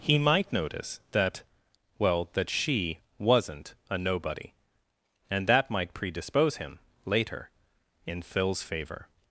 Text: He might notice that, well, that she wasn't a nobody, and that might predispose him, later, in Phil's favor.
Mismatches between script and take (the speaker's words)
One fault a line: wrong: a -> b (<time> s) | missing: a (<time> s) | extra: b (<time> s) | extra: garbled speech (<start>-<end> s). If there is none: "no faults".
no faults